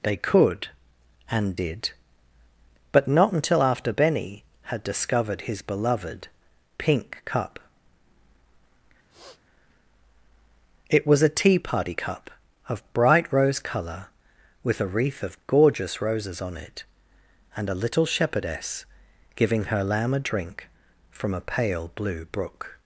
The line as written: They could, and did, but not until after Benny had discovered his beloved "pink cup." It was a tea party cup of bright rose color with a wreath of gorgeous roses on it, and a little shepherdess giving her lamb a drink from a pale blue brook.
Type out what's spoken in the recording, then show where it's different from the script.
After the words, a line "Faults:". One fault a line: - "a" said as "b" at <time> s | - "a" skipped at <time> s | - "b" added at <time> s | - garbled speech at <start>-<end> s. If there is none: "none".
They could, and did, but not until after Benny had discovered his beloved "pink cup." It was a tea party cup of bright rose color with a wreath of gorgeous roses on it, and a little shepherdess giving her lamb a drink from a pale blue brook.
Faults:
none